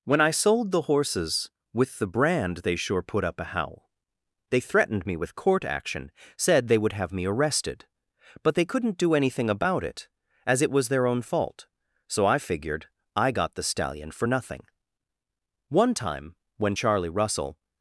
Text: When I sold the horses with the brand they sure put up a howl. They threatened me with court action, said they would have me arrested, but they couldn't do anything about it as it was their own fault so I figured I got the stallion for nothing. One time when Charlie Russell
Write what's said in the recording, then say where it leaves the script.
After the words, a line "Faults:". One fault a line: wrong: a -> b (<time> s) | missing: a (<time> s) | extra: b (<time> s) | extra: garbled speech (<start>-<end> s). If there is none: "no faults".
When I sold the horses with the brand they sure put up a howl. They threatened me with court action, said they would have me arrested, but they couldn't do anything about it as it was their own fault so I figured I got the stallion for nothing. One time when Charlie Russell
Faults:
no faults